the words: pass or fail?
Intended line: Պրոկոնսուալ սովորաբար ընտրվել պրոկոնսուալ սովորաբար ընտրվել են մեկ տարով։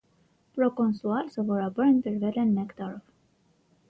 fail